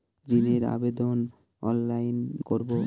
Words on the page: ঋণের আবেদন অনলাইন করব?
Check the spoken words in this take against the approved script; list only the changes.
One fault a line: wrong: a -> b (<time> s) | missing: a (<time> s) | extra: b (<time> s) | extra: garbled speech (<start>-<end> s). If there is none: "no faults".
no faults